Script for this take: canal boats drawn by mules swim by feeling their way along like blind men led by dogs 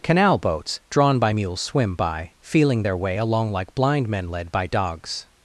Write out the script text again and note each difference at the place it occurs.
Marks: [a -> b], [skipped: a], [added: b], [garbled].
canal boats drawn by mules swim by feeling their way along like blind men led by dogs